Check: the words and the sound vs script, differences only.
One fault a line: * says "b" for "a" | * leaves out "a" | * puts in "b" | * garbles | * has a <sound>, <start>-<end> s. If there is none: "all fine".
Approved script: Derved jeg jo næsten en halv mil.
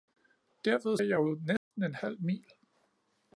* has a dropout, 1.6-1.7 s